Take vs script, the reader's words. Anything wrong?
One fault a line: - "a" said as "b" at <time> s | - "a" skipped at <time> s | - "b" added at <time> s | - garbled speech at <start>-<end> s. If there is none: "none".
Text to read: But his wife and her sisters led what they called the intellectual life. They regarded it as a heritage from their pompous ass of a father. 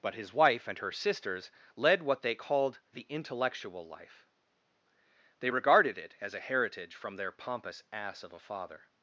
none